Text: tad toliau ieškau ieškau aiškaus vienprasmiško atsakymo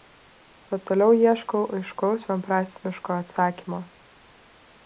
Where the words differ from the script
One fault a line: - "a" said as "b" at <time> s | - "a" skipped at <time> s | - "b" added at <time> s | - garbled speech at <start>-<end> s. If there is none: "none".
- "ieškau" skipped at 1.6 s